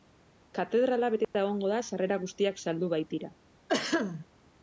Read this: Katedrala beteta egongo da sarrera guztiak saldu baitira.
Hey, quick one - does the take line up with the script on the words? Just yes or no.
yes